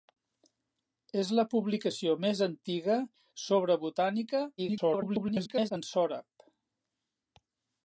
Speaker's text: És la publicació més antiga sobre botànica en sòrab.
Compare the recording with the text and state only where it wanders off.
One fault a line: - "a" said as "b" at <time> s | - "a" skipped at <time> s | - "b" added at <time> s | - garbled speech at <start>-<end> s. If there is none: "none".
- garbled speech at 4.6-5.7 s